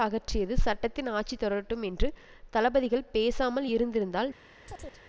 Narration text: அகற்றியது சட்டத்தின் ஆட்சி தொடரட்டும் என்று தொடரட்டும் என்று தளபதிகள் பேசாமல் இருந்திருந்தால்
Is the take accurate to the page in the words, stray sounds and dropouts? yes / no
no